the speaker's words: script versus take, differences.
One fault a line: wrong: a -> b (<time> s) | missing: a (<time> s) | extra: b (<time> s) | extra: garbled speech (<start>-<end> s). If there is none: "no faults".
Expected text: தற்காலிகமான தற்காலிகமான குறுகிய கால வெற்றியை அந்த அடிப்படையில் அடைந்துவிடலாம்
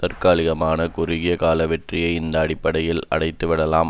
missing: தற்காலிகமான (0.9 s)
wrong: அந்த -> இந்த (2.1 s)